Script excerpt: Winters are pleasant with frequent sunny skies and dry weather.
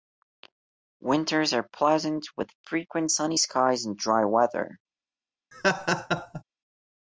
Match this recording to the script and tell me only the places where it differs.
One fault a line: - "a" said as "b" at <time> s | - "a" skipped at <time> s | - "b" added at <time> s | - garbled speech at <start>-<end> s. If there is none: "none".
none